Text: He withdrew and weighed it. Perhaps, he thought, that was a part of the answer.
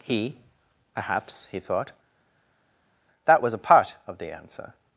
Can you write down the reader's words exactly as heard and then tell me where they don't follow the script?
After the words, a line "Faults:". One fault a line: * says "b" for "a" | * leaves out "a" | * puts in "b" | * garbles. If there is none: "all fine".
He. Perhaps, he thought, that was a part of the answer.
Faults:
* leaves out "withdrew and weighed it"